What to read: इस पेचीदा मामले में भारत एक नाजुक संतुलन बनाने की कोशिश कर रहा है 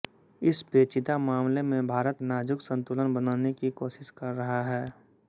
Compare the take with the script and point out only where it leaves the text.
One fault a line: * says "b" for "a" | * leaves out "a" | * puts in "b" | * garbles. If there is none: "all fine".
* leaves out "एक"